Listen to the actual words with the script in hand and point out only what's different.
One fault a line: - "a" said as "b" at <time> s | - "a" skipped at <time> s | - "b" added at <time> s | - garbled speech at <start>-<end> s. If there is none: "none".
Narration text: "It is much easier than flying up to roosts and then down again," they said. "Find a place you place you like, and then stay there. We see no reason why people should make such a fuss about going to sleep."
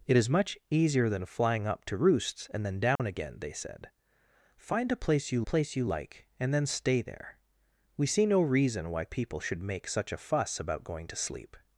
none